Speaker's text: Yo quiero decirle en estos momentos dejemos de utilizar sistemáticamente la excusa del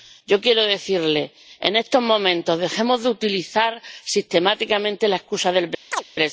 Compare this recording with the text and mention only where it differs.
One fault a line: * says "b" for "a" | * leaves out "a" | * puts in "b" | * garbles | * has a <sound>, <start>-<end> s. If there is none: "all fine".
* has a chirp, 5.9-6.0 s